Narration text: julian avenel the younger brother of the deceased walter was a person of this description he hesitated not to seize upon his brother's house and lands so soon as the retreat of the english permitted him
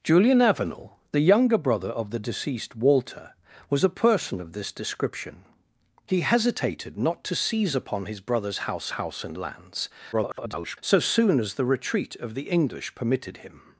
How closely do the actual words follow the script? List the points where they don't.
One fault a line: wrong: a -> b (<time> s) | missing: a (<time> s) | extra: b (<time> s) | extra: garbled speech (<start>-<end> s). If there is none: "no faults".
extra: house (8.9 s)
extra: garbled speech (10.1-10.8 s)